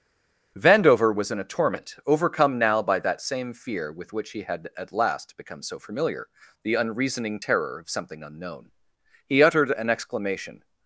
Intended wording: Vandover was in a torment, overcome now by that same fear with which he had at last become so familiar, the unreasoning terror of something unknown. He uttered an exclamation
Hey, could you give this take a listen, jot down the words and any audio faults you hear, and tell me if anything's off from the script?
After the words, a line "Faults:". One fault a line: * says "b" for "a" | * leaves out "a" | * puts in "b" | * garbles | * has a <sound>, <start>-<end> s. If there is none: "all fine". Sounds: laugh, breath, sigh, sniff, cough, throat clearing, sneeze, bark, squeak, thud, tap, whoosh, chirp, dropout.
Vandover was in a torment, overcome now by that same fear with which he had at last become so familiar, the unreasoning terror of something unknown. He uttered an exclamation
Faults:
all fine